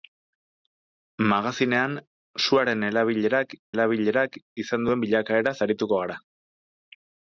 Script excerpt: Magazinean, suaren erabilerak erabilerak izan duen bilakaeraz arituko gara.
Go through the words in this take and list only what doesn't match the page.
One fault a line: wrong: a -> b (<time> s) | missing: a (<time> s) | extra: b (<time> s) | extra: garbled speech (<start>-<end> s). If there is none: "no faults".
no faults